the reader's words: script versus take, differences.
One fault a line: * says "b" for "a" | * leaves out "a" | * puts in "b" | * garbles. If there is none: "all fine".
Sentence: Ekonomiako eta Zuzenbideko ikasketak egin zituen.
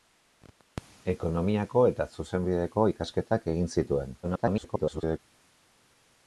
* garbles